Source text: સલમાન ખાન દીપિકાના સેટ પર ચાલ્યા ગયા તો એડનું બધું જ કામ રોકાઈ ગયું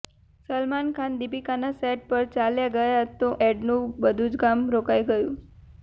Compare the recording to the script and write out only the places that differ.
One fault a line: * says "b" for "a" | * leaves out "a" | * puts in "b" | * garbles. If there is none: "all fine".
all fine